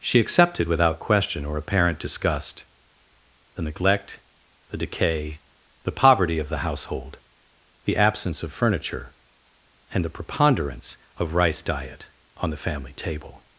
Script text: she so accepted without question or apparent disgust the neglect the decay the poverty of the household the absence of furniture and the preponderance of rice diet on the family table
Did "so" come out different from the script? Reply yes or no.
yes